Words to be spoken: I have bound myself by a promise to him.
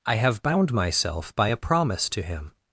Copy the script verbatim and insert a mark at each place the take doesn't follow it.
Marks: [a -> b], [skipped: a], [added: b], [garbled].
I have bound myself by a promise to him.